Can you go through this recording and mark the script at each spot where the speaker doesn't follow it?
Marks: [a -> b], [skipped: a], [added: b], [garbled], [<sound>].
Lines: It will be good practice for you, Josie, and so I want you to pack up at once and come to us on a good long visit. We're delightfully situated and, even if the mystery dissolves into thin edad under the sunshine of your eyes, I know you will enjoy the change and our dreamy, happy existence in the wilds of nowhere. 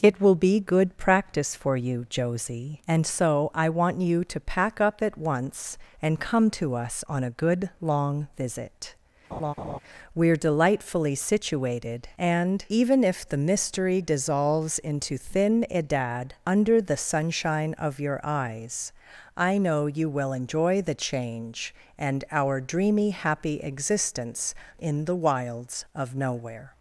It will be good practice for you, Josie, and so I want you to pack up at once and come to us on a good long visit. [laugh] We're delightfully situated and, even if the mystery dissolves into thin edad under the sunshine of your eyes, I know you will enjoy the change and our dreamy, happy existence in the wilds of nowhere.